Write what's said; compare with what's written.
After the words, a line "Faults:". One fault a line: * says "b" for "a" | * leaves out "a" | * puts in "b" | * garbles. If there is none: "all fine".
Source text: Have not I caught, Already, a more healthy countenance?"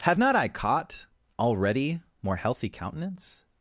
Have not I caught, Already, more healthy countenance?"
Faults:
* leaves out "a"